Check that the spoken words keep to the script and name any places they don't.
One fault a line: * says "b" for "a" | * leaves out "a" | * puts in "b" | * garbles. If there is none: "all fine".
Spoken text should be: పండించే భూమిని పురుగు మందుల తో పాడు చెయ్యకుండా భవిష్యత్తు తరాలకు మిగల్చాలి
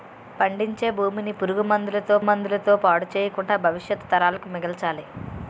* puts in "మందుల తో"